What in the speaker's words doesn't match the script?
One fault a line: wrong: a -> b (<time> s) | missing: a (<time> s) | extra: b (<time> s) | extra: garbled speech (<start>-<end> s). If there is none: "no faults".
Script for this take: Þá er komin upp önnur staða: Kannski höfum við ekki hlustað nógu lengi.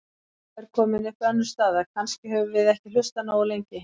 no faults